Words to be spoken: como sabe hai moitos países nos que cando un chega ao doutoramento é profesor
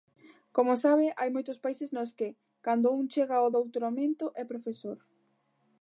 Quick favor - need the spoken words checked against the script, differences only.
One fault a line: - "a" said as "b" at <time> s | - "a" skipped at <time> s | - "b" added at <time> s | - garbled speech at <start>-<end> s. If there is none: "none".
none